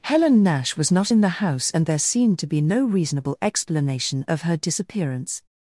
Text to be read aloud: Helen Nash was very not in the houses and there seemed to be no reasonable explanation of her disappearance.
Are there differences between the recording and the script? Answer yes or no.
yes